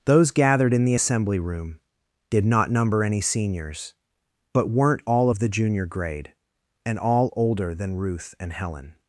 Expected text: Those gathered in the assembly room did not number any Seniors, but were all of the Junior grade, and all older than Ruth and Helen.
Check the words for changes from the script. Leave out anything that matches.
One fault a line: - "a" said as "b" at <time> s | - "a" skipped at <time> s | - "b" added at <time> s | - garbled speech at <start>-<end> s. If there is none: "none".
- "were" said as "weren't" at 4.7 s